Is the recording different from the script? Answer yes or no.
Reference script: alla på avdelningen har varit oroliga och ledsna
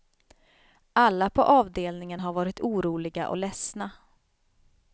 no